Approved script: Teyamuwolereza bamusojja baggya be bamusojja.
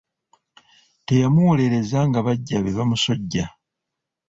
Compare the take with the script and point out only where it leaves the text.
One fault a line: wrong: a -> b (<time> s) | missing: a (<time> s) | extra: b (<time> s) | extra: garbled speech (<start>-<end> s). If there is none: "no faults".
wrong: bamusojja -> nga (2.1 s)